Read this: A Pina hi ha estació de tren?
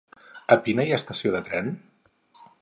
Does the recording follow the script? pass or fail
pass